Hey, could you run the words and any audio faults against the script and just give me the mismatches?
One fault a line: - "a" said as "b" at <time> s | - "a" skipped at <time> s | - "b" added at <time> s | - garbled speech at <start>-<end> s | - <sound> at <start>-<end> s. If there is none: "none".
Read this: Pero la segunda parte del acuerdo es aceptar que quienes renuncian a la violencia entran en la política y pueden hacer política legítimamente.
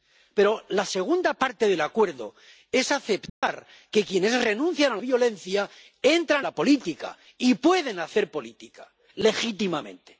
- dropout at 3.3-3.4 s
- "la" skipped at 5.0 s
- "en" skipped at 6.5 s